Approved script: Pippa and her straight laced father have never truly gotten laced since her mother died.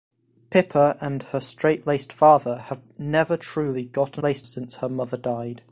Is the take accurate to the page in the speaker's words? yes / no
yes